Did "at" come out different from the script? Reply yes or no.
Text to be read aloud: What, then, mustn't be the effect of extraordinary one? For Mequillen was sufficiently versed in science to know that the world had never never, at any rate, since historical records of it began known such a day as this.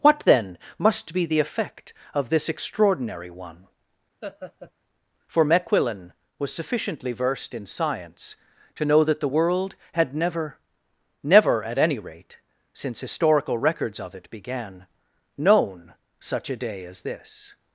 no